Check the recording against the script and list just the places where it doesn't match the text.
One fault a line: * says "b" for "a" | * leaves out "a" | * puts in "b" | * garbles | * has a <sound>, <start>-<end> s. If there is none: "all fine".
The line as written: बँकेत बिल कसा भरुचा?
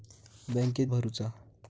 * leaves out "बिल कसा"